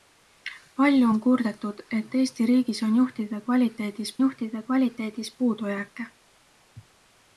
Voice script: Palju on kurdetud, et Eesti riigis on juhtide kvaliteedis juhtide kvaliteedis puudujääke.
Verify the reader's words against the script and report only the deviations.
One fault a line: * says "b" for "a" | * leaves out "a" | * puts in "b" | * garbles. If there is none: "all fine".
all fine